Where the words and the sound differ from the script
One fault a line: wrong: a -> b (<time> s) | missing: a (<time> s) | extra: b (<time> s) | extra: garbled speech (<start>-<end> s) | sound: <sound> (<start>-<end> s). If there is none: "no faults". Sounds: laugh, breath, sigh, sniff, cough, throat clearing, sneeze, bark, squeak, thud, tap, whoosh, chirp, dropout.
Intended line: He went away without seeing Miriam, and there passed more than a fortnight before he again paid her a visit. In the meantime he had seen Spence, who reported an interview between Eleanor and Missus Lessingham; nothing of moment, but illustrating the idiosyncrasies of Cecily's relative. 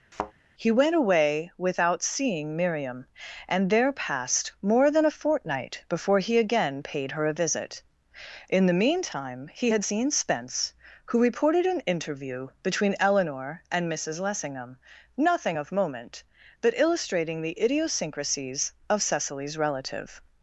sound: thud (0.1-0.3 s)